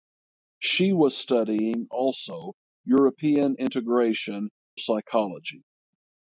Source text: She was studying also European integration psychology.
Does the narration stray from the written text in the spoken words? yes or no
no